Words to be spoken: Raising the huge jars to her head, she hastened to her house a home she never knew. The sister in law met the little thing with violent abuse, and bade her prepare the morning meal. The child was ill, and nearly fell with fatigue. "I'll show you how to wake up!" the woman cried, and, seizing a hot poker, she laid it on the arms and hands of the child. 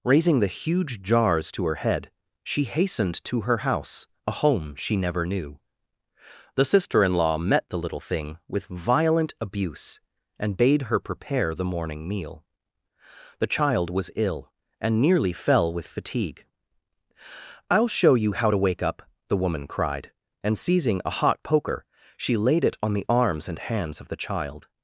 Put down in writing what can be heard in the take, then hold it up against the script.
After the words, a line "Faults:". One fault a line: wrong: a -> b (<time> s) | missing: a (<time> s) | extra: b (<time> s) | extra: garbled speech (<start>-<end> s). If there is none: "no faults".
Raising the huge jars to her head, she hastened to her house a home she never knew. The sister in law met the little thing with violent abuse, and bade her prepare the morning meal. The child was ill, and nearly fell with fatigue. "I'll show you how to wake up!" the woman cried, and, seizing a hot poker, she laid it on the arms and hands of the child.
Faults:
no faults